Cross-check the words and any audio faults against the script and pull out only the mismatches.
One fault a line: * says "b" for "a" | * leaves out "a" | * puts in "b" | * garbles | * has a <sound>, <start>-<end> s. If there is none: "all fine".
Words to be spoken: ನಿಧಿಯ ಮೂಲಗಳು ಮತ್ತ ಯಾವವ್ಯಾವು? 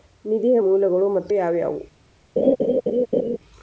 * has a laugh, 2.4-3.4 s